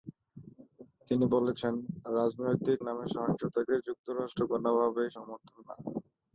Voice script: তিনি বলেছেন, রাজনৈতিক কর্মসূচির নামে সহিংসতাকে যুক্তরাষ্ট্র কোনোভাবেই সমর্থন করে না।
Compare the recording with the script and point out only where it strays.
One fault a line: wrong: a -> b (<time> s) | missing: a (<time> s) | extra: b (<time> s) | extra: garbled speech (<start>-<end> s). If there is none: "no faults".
missing: কর্মসূচির (2.8 s)
missing: করে (5.6 s)